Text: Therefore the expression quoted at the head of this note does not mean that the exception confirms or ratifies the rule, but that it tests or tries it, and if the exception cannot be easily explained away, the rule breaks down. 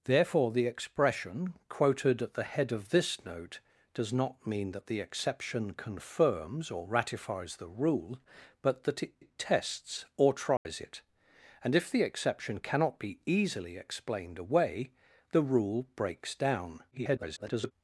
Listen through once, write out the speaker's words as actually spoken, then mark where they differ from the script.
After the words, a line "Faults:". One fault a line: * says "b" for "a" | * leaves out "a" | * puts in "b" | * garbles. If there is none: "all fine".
Therefore the expression quoted at the head of this note does not mean that the exception confirms or ratifies the rule, but that it it tests or tries it, and if the exception cannot be easily explained away, the rule breaks down. [garbled]
Faults:
* puts in "it"
* garbles